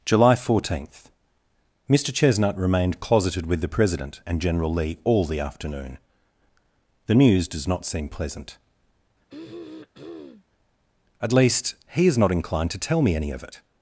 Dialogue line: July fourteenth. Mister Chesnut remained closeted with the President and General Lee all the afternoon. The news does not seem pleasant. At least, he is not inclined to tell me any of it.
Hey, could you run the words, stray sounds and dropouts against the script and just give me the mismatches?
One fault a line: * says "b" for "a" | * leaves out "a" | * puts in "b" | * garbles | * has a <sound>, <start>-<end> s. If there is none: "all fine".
* has a throat clearing, 9.3-10.4 s